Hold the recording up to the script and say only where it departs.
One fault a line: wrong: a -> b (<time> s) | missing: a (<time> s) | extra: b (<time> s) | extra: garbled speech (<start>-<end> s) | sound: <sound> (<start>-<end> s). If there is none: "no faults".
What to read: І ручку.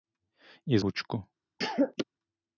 sound: cough (1.6-2.0 s)